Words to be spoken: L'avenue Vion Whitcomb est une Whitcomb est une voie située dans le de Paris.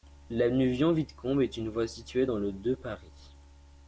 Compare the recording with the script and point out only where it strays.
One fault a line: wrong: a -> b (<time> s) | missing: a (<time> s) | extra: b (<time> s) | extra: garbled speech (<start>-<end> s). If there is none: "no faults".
missing: Whitcomb est une (1.7 s)